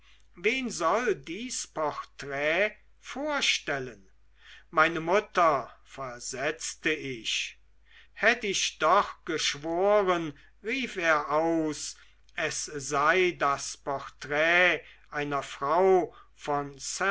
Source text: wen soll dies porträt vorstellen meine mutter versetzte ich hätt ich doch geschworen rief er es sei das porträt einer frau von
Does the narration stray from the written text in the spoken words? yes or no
yes